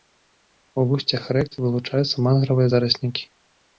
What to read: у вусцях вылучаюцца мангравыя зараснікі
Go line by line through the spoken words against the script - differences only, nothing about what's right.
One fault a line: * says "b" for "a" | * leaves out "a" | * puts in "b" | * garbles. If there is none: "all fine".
* puts in "рэк"